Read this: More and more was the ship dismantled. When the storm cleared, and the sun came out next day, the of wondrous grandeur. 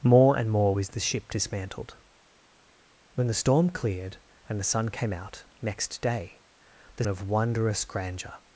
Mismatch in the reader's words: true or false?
false